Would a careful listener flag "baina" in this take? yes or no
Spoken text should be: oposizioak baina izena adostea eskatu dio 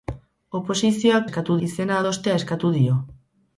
yes